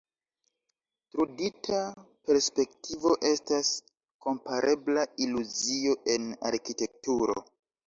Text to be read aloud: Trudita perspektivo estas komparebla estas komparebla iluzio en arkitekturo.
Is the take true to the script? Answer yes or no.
no